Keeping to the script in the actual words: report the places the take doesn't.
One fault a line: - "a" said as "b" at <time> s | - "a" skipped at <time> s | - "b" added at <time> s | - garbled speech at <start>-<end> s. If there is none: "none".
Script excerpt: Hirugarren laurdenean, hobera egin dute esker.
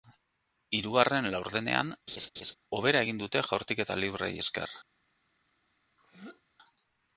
- "jaurtiketa libreei" added at 3.5 s